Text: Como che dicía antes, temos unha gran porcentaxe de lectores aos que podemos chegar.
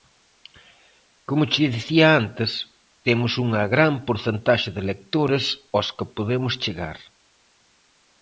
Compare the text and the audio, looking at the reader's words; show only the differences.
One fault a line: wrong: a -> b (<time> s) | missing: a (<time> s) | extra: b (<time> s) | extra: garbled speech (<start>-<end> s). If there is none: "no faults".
no faults